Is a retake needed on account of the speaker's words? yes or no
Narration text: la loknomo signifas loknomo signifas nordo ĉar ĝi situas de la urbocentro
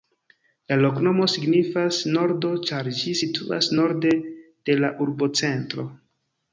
yes